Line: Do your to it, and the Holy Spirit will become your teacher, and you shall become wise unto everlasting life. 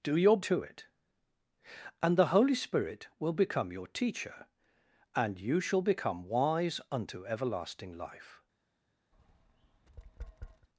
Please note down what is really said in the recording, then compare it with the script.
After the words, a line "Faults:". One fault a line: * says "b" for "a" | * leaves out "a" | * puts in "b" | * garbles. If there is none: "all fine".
Do your to it, and the Holy Spirit will become your teacher, and you shall become wise unto everlasting life.
Faults:
all fine